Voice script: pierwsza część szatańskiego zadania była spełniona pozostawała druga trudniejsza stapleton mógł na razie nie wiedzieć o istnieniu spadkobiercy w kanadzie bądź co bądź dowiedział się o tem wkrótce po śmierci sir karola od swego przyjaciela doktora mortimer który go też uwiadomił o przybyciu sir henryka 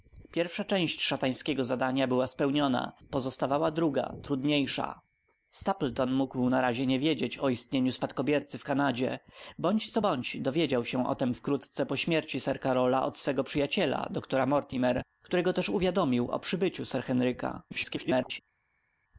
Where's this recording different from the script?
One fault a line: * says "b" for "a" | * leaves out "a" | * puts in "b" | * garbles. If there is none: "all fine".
* garbles